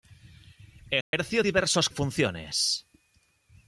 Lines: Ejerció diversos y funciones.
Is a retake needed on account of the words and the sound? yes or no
yes